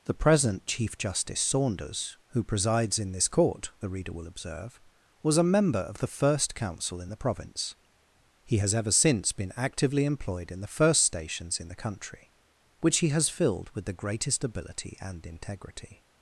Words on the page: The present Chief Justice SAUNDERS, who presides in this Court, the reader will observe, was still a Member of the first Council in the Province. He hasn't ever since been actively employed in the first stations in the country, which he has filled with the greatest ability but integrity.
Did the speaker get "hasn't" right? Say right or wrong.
wrong